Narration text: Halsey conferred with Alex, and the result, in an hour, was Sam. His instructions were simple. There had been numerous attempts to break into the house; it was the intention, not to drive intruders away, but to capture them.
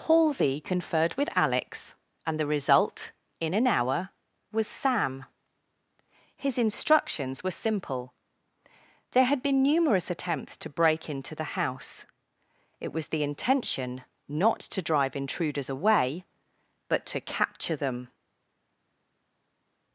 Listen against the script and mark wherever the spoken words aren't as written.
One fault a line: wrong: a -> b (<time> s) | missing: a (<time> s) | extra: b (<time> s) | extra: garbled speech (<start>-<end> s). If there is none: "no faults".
no faults